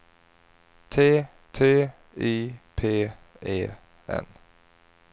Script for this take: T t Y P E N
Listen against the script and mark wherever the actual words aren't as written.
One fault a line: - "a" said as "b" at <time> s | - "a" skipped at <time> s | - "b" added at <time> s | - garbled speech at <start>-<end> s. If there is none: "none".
none